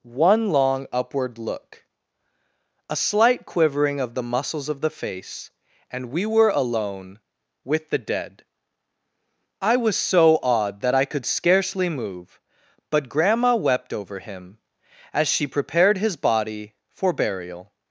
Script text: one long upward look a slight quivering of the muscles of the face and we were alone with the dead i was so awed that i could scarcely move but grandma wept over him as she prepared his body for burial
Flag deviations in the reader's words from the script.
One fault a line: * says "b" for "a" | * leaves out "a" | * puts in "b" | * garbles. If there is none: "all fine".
all fine